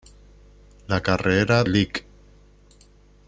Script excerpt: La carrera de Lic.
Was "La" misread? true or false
false